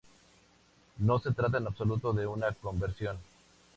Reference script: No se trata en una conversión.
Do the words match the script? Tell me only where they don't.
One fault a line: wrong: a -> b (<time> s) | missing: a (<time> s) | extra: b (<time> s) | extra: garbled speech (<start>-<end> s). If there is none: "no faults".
extra: absoluto de (1.7 s)